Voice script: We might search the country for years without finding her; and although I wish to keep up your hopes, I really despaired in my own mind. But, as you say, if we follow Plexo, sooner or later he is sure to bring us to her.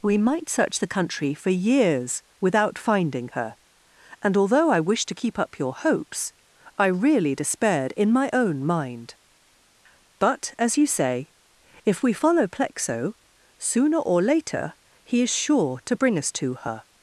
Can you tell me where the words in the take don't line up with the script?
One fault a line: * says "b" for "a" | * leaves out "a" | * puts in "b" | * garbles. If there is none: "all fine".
all fine